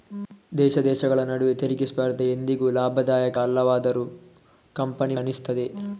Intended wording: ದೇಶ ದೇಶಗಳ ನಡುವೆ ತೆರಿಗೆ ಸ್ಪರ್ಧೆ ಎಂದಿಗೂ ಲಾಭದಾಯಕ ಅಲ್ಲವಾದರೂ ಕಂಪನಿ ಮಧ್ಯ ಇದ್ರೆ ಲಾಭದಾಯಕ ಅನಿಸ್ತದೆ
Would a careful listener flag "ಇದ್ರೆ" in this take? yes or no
yes